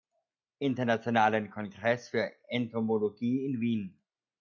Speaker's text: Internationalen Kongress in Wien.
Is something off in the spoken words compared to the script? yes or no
yes